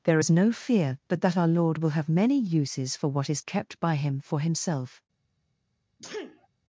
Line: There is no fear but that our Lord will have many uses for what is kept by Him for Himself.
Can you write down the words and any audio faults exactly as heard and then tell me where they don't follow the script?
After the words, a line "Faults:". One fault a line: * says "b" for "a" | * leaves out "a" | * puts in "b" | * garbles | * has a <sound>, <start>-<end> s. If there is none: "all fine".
There is no fear but that our Lord will have many uses for what is kept by Him for Himself.
Faults:
* has a sneeze, 6.0-6.5 s